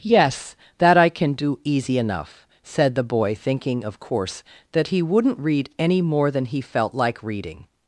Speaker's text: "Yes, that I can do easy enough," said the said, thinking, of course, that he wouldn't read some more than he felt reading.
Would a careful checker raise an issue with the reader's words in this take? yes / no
yes